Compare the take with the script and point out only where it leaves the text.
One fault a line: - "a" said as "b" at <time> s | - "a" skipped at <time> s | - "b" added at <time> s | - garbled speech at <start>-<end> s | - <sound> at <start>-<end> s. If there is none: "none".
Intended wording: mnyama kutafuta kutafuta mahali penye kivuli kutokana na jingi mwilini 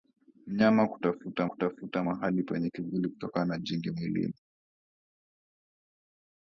none